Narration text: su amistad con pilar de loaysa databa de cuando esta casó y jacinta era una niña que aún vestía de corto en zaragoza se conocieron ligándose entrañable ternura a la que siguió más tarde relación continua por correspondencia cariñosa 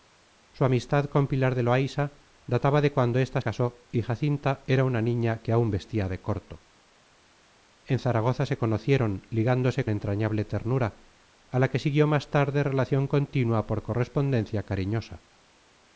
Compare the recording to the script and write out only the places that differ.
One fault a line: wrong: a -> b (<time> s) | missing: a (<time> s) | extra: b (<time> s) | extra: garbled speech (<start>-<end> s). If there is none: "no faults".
no faults